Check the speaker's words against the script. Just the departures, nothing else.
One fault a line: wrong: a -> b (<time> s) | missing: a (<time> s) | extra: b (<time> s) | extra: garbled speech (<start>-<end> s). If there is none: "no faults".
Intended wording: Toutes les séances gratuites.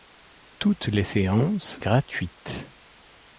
no faults